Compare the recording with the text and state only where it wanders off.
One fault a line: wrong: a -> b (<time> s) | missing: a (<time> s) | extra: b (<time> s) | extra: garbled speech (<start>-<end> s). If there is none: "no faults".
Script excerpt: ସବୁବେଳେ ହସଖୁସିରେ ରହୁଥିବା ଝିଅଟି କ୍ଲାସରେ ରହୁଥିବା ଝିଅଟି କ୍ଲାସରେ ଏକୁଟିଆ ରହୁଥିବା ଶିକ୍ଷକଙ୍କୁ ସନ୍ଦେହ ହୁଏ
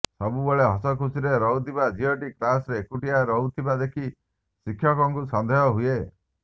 missing: ରହୁଥିବା ଝିଅଟି କ୍ଲାସରେ (2.8 s)
extra: ଦେଖି (3.8 s)